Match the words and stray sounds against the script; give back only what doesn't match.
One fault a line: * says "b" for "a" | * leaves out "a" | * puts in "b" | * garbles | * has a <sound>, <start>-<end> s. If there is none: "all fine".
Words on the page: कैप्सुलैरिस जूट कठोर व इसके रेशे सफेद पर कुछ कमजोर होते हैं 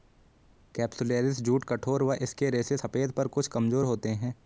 all fine